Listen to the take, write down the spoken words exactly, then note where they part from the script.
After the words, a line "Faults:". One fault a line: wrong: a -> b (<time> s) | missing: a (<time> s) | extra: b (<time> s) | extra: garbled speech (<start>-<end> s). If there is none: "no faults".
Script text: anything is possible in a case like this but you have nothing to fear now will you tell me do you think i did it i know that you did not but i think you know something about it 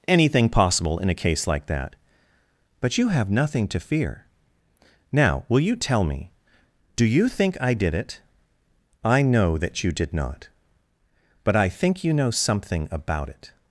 anything possible in a case like that but you have nothing to fear now will you tell me do you think i did it i know that you did not but i think you know something about it
Faults:
missing: is (0.5 s)
wrong: this -> that (1.7 s)